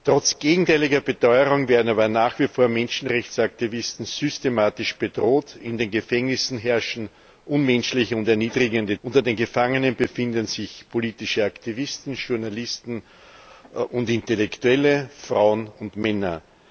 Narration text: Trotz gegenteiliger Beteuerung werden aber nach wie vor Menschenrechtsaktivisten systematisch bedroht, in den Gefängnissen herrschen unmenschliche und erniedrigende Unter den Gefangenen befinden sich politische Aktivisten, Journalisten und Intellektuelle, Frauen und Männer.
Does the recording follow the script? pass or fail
pass